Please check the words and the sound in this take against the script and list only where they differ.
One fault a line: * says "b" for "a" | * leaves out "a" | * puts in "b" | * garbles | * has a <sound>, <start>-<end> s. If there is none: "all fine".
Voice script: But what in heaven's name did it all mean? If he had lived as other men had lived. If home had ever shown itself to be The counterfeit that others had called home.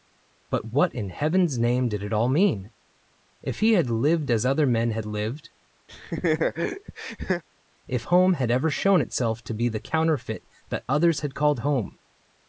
* has a laugh, 5.9-7.4 s